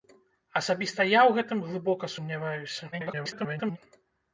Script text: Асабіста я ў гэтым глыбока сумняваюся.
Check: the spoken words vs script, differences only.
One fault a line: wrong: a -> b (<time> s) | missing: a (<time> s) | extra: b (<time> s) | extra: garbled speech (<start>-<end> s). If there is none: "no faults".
extra: garbled speech (2.9-3.8 s)